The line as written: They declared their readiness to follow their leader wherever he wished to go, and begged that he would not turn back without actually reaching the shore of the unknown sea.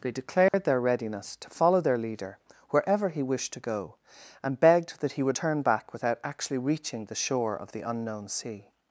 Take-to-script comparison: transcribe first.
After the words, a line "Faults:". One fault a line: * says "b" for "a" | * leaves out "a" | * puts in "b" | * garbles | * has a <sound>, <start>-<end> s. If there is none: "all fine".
They declared their readiness to follow their leader wherever he wished to go, and begged that he would turn back without actually reaching the shore of the unknown sea.
Faults:
* has a dropout, 0.5-0.5 s
* leaves out "not"